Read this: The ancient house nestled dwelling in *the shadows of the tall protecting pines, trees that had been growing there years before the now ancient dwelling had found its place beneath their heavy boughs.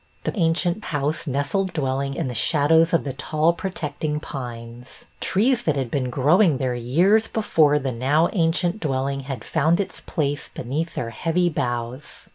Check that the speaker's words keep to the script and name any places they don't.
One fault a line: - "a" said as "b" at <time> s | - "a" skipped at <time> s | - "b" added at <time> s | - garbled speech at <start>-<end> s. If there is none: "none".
none